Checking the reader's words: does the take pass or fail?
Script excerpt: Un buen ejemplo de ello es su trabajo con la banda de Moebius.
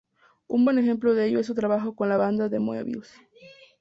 pass